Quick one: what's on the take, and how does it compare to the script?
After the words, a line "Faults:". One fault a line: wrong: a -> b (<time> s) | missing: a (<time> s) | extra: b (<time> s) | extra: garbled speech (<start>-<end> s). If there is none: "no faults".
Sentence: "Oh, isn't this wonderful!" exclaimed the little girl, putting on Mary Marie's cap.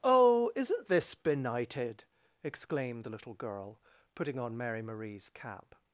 "Oh, isn't this benighted!" exclaimed the little girl, putting on Mary Marie's cap.
Faults:
wrong: wonderful -> benighted (1.1 s)